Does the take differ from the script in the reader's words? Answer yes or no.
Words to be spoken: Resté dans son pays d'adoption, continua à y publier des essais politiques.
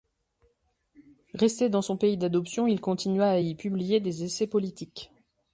yes